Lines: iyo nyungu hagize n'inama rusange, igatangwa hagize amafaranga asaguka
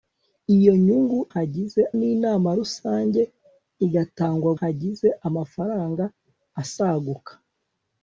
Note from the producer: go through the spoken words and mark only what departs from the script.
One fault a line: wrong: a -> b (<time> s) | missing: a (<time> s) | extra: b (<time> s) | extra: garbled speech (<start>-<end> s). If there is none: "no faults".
no faults